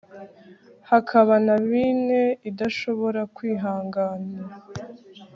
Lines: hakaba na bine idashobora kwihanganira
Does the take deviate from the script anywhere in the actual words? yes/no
no